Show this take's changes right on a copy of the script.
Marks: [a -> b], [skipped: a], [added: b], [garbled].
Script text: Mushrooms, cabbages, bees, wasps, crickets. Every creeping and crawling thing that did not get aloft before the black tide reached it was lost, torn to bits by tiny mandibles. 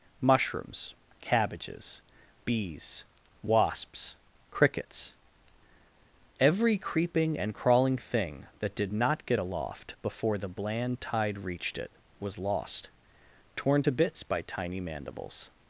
Mushrooms, cabbages, bees, wasps, crickets. Every creeping and crawling thing that did not get aloft before the [black -> bland] tide reached it was lost, torn to bits by tiny mandibles.